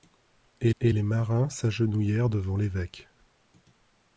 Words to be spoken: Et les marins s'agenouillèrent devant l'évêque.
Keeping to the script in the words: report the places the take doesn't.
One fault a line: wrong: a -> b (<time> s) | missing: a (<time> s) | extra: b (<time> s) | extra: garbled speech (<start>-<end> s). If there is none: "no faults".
extra: et (0.8 s)